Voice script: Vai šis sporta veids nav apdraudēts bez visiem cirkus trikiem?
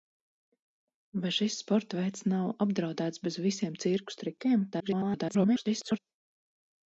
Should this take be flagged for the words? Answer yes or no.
yes